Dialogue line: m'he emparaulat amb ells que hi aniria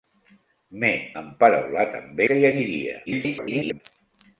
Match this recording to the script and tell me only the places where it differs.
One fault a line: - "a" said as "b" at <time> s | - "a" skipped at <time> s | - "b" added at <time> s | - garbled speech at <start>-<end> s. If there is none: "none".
- "ells" skipped at 2.2 s
- garbled speech at 3.1-3.8 s